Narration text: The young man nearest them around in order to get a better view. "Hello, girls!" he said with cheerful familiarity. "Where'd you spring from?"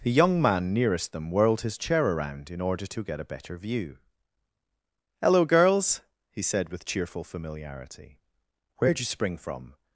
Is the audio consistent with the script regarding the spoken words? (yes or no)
no